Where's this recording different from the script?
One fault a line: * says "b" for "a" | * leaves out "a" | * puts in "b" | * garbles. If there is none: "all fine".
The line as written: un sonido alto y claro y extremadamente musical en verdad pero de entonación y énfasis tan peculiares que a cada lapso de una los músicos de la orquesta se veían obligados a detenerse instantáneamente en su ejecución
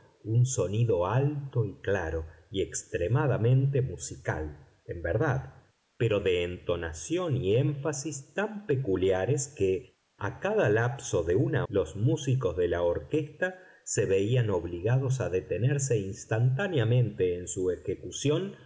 all fine